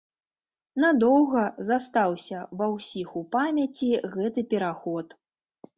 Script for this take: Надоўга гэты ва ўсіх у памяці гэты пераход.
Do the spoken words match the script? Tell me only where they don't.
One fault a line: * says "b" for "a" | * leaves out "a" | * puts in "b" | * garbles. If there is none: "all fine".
* says "застаўся" for "гэты"